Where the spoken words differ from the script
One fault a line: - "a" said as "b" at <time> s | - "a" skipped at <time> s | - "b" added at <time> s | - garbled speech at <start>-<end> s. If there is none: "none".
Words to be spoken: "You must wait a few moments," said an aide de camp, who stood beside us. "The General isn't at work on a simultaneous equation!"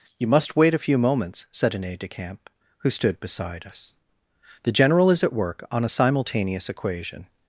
- "isn't" said as "is" at 5.1 s